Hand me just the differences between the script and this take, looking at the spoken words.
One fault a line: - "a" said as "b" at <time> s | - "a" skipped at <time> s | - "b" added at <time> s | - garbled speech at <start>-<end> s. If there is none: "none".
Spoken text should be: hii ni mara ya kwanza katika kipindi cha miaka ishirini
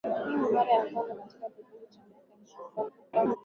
- garbled speech at 2.8-3.4 s